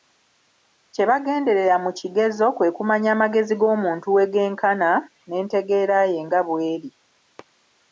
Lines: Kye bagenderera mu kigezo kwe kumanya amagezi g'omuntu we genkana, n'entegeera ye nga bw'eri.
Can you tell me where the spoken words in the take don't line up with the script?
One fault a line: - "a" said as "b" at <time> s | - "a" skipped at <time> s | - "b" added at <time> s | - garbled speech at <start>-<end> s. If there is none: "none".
none